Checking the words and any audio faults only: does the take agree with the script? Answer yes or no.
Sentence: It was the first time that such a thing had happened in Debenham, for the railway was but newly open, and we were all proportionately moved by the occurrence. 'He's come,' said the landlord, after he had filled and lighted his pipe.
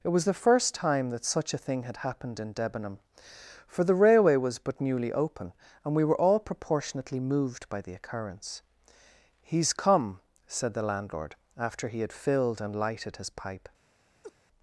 no